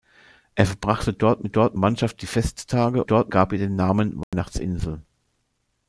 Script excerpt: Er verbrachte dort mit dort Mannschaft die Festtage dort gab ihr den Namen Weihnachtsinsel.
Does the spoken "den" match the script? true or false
true